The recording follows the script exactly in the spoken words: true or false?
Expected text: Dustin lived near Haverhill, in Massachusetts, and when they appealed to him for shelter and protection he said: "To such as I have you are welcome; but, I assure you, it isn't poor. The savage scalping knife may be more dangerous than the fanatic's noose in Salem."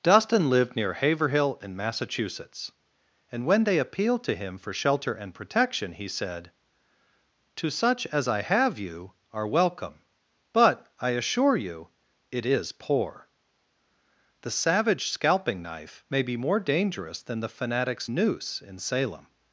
false